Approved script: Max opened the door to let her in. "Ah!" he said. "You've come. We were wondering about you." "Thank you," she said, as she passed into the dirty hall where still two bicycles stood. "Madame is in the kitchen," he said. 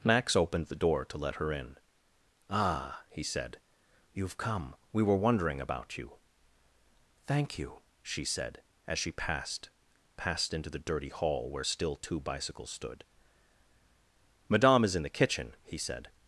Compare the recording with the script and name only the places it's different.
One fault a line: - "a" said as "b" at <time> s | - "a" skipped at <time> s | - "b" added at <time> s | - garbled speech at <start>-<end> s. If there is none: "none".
- "passed" added at 10.2 s